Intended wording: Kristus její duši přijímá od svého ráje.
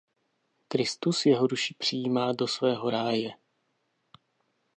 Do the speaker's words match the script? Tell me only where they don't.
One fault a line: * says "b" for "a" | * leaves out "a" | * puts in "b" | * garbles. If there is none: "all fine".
* says "jeho" for "její"
* says "do" for "od"